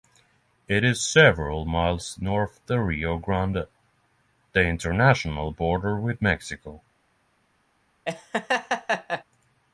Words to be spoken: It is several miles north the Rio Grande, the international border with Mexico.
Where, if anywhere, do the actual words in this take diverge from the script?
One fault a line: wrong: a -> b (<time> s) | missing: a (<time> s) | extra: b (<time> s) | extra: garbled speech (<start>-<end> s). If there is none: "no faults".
no faults